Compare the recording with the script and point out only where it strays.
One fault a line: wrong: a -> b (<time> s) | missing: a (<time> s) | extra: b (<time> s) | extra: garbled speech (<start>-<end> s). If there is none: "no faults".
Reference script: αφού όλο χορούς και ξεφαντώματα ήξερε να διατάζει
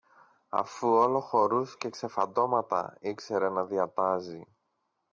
no faults